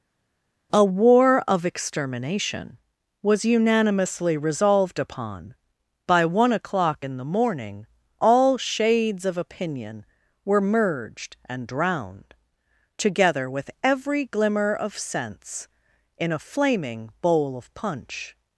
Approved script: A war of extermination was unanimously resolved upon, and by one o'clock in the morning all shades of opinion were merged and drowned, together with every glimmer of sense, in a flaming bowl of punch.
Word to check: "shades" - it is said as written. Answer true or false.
true